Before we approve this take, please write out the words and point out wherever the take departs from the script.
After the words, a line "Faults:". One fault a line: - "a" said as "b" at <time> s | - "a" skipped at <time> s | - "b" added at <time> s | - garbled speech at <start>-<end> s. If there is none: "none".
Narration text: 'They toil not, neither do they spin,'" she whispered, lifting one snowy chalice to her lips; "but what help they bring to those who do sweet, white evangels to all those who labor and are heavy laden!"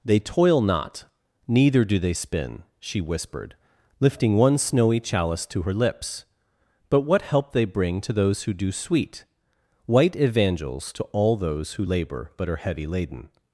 'They toil not, neither do they spin,'" she whispered, lifting one snowy chalice to her lips; "but what help they bring to those who do sweet, white evangels to all those who labor but are heavy laden!"
Faults:
- "and" said as "but" at 12.4 s